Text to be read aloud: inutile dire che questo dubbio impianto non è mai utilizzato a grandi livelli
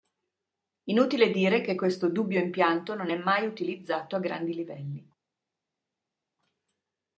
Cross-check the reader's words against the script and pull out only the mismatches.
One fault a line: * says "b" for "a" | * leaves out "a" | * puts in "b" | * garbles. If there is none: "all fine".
all fine